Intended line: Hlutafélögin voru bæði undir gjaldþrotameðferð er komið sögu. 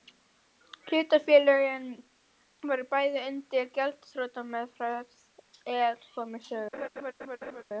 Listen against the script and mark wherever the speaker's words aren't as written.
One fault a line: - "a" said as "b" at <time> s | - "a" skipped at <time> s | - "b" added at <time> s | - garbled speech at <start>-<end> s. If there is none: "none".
none